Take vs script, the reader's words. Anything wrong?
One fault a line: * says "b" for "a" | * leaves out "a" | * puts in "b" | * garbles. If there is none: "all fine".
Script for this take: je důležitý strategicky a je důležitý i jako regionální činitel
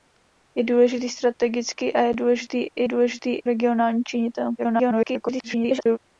* says "důležitý" for "jako"
* garbles